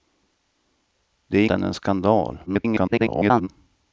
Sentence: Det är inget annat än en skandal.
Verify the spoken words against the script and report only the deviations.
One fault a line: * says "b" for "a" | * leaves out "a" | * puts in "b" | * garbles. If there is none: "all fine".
* leaves out "inget annat"
* garbles